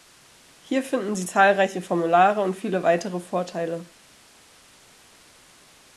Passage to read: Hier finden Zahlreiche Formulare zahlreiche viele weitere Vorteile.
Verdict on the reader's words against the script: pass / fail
fail